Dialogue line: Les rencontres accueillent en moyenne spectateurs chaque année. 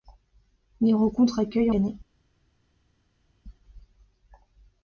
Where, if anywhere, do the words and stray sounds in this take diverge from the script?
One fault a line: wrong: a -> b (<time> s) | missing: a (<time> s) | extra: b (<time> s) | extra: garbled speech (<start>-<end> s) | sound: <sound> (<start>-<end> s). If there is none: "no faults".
missing: moyenne spectateurs chaque (1.8 s)